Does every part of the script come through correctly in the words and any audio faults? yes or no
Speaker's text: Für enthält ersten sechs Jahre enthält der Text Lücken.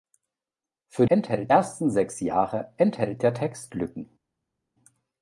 yes